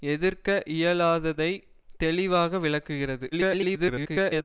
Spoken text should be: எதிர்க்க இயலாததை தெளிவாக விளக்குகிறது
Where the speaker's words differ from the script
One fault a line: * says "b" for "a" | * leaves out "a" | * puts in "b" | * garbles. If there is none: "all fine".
* garbles